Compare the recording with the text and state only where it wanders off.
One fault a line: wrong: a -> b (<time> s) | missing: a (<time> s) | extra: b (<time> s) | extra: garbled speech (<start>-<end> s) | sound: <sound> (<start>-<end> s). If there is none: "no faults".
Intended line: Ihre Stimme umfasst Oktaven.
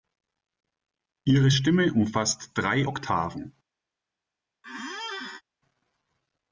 extra: drei (2.5 s)
sound: squeak (4.6-5.4 s)